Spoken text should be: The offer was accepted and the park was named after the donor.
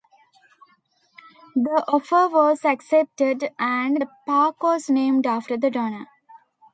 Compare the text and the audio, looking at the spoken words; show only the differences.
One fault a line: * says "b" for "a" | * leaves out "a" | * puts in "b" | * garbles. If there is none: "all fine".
all fine